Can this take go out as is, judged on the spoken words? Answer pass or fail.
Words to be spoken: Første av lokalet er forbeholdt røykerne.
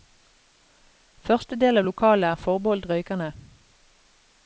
fail